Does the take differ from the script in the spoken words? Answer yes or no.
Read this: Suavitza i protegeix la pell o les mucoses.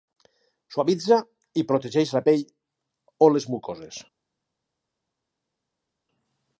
no